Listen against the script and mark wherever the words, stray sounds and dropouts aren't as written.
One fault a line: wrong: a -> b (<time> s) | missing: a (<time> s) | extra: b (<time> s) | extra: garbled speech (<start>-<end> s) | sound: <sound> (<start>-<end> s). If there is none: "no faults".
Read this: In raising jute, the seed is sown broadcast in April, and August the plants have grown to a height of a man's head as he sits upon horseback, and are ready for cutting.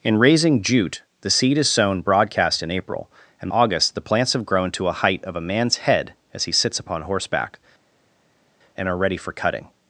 no faults